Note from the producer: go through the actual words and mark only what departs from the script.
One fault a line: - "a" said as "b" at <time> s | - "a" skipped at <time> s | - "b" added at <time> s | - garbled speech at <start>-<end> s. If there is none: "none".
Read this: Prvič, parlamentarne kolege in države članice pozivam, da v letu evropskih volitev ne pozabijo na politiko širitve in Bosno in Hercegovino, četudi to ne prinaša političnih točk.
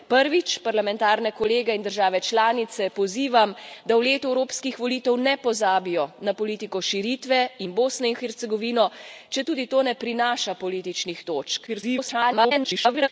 - garbled speech at 11.7-13.1 s